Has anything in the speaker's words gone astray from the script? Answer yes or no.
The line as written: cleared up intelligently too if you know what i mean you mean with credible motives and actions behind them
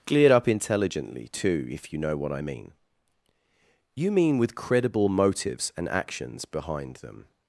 no